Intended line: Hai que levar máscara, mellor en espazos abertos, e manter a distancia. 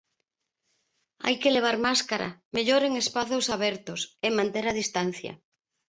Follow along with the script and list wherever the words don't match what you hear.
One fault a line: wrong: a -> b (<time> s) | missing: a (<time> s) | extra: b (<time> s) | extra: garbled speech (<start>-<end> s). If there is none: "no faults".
no faults